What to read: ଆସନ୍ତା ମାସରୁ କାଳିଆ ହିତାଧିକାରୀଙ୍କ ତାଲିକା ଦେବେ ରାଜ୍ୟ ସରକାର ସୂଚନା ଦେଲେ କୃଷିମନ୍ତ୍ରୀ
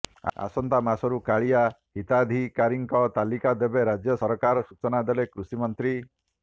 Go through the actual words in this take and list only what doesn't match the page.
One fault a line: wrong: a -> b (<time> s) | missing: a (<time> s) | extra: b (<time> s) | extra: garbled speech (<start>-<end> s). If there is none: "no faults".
no faults